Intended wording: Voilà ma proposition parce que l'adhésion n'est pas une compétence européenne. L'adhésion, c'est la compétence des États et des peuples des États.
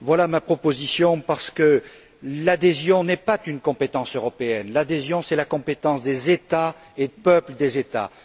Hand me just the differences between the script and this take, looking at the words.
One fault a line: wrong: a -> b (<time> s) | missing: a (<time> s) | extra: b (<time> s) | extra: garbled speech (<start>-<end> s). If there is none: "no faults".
missing: des (7.1 s)